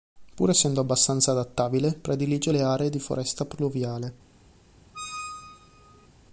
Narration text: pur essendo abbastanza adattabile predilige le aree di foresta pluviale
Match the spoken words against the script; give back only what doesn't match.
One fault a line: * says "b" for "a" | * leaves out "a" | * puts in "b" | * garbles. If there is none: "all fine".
all fine